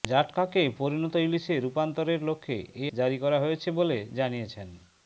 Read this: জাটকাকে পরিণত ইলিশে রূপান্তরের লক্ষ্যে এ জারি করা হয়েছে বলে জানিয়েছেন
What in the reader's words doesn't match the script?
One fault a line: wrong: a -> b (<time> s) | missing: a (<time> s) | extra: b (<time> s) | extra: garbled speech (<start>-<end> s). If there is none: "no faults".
no faults